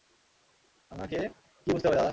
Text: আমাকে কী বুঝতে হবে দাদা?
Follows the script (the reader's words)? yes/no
yes